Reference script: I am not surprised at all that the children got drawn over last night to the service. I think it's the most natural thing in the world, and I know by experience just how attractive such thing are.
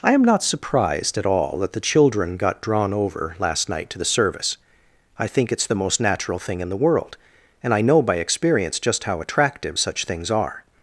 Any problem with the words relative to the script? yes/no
yes